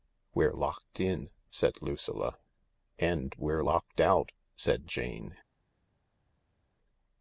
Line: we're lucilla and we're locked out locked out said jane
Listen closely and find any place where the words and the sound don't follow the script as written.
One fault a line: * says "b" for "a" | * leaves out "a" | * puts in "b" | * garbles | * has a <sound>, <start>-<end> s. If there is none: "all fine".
* puts in "locked in said"
* leaves out "locked out"